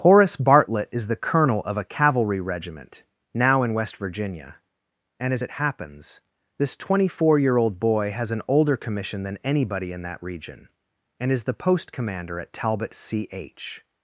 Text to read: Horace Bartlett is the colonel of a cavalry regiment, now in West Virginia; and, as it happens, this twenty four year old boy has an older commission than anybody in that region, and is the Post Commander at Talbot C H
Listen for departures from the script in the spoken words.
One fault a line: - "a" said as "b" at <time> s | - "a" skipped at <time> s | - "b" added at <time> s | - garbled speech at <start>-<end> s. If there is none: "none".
none